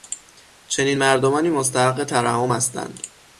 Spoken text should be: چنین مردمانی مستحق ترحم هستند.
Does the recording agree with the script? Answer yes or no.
yes